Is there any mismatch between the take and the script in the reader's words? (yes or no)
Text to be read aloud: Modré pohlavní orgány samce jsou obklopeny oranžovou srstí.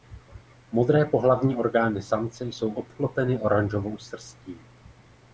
no